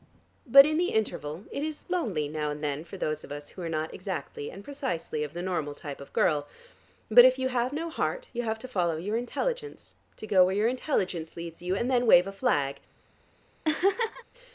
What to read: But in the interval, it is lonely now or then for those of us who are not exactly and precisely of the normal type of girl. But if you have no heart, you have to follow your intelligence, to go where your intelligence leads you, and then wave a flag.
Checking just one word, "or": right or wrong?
wrong